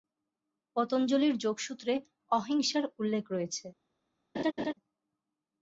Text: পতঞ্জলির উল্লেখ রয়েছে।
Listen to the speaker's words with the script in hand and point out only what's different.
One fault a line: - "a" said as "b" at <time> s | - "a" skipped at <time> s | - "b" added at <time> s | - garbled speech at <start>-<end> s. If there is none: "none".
- "যোগসূত্রে অহিংসার" added at 1.4 s